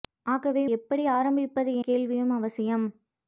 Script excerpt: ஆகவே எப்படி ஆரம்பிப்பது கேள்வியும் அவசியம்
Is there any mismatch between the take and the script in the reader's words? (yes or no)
no